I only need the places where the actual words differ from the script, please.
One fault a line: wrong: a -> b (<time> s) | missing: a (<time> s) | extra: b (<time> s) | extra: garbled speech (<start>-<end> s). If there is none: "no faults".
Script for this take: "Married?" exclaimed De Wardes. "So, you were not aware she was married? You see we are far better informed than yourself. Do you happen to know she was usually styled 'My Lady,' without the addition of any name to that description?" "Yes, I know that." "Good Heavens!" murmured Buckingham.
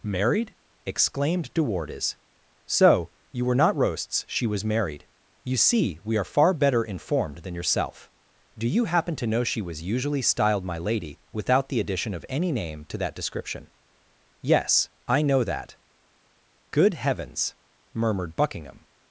wrong: aware -> roasts (3.8 s)